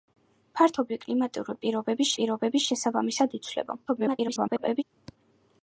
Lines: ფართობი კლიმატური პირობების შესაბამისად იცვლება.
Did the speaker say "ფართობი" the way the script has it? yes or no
yes